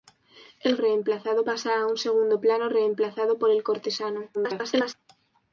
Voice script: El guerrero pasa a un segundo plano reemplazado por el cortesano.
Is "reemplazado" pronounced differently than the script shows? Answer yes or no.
no